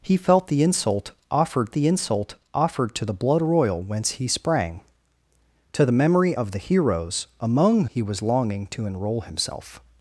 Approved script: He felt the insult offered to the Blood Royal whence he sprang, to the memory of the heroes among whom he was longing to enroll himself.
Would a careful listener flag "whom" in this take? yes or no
yes